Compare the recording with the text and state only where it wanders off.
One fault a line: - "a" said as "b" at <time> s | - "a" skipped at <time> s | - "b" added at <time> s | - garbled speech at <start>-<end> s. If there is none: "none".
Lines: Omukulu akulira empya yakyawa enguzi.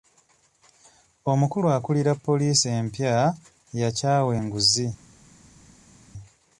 - "poliisi" added at 2.2 s